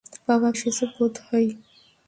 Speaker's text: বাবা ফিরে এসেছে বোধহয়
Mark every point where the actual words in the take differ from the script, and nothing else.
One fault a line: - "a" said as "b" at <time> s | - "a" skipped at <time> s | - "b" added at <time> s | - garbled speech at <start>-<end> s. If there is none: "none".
- "ফিরে" skipped at 0.5 s